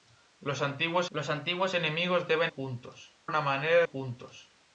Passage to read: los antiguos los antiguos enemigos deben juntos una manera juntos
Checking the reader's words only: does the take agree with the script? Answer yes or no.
yes